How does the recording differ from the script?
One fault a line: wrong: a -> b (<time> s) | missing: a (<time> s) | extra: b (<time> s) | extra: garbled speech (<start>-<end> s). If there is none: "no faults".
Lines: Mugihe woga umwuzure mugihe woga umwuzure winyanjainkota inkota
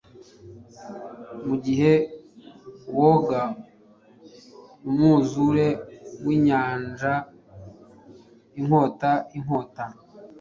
missing: mugihe woga umwuzure (5.7 s)